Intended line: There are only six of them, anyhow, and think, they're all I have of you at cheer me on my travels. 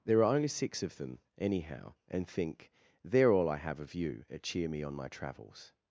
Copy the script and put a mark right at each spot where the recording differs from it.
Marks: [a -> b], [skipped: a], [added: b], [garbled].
There are only six of them, anyhow, and think, they're all I have of you at cheer me on my travels.